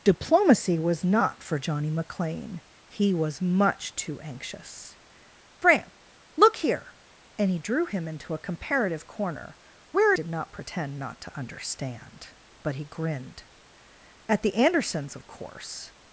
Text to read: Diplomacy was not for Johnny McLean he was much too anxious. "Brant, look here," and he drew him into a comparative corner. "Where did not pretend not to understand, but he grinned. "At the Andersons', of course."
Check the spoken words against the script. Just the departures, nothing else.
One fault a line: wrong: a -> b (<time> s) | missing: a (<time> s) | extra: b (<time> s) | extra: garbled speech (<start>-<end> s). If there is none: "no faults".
no faults